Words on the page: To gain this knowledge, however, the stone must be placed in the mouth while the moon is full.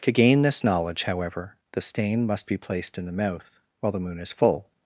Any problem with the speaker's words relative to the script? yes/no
yes